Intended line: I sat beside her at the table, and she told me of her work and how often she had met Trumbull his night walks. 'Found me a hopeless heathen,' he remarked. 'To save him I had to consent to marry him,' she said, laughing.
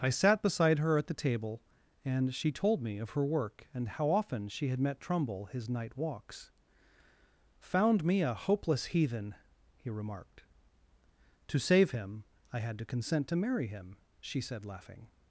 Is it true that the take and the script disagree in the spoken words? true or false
false